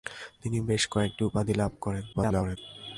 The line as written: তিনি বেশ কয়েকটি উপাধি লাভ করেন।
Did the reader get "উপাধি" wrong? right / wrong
right